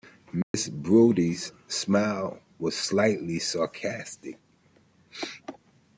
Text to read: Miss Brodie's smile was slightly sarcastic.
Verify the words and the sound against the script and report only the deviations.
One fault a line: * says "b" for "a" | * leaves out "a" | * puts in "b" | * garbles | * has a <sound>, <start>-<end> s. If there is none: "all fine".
* has a dropout, 0.4-0.5 s